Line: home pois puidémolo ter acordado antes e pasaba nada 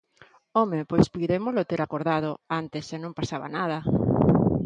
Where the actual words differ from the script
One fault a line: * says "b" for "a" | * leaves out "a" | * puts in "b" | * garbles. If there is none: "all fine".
* puts in "non"